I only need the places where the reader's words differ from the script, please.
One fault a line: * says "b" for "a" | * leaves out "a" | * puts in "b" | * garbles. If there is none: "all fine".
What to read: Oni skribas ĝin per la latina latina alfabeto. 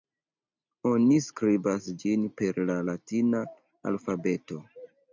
* leaves out "latina"